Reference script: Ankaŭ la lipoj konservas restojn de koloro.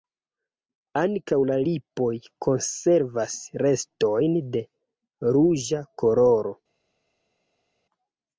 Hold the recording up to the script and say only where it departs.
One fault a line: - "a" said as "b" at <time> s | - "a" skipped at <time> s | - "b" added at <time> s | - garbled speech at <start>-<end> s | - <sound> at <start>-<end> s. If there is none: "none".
- "ruĝa" added at 5.3 s